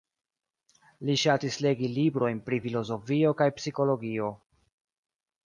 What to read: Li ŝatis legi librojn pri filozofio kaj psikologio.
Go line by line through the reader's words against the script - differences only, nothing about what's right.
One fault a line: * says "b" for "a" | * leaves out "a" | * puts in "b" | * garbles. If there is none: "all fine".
all fine